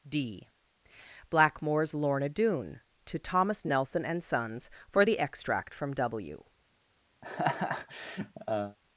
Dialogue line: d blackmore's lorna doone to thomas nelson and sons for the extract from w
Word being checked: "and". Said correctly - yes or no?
yes